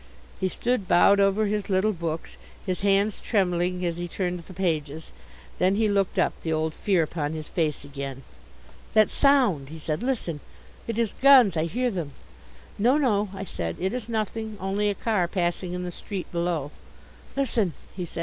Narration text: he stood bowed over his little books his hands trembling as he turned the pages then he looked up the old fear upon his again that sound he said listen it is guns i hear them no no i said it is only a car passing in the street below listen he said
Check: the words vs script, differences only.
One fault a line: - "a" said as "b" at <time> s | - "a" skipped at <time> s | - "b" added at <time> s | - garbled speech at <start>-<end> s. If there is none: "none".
- "face" added at 7.5 s
- "nothing" added at 14.1 s